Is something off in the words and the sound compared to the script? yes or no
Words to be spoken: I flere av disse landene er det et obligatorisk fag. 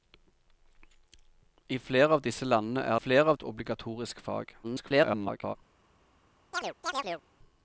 yes